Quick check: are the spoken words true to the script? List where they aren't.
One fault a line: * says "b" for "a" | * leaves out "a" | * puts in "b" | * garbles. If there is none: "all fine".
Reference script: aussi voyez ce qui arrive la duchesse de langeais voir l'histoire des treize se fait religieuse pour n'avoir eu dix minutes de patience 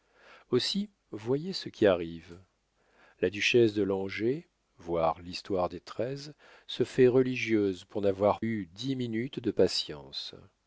all fine